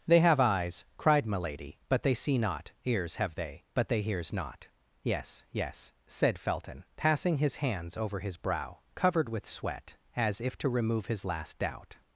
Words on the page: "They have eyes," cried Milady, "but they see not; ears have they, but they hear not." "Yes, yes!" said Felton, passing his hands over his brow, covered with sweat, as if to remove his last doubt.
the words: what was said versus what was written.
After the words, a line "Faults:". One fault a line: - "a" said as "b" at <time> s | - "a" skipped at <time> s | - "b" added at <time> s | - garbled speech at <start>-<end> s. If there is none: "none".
"They have eyes," cried Milady, "but they see not; ears have they, but they hears not." "Yes, yes!" said Felton, passing his hands over his brow, covered with sweat, as if to remove his last doubt.
Faults:
- "hear" said as "hears" at 4.0 s